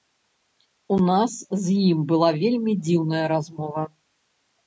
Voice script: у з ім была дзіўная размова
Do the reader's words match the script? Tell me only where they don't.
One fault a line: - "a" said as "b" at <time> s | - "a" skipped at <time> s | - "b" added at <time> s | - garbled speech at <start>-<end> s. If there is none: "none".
- "нас" added at 1.1 s
- "вельмі" added at 2.4 s